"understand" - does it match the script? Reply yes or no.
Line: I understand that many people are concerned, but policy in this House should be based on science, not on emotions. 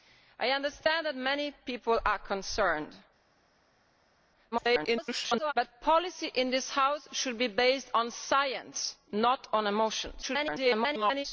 yes